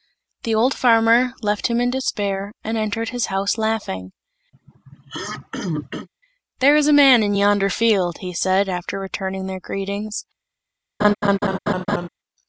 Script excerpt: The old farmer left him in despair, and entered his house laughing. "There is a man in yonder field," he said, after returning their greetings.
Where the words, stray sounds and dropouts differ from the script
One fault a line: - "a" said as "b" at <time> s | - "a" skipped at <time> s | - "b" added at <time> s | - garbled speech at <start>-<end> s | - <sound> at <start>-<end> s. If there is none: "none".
- throat clearing at 4.5-6.1 s
- laugh at 11.0-12.1 s